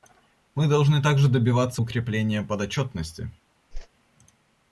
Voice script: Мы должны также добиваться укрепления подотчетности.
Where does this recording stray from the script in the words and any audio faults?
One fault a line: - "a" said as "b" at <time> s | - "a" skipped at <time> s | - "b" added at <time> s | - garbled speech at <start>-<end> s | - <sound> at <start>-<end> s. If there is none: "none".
- whoosh at 3.7-3.9 s